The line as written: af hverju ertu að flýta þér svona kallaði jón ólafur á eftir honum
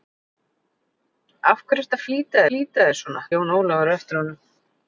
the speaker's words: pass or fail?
fail